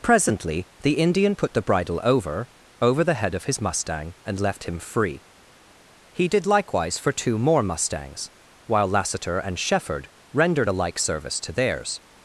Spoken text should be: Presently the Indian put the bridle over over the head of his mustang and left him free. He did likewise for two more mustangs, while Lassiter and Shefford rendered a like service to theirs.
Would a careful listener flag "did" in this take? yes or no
no